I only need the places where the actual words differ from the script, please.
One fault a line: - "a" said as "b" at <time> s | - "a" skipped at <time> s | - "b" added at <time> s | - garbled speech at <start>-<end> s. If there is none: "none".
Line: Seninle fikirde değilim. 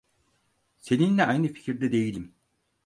- "aynı" added at 1.2 s